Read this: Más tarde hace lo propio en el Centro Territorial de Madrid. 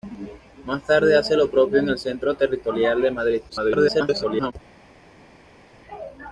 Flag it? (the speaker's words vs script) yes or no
yes